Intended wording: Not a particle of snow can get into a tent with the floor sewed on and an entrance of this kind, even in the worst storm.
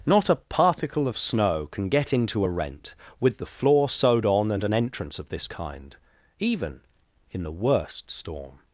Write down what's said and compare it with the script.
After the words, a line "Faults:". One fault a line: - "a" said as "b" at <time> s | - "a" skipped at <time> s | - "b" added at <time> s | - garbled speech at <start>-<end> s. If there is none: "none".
Not a particle of snow can get into a rent with the floor sewed on and an entrance of this kind, even in the worst storm.
Faults:
- "tent" said as "rent" at 2.5 s